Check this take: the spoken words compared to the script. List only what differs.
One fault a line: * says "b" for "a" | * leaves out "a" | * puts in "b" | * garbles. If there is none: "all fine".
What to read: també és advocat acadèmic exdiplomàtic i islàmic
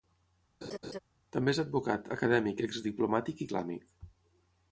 all fine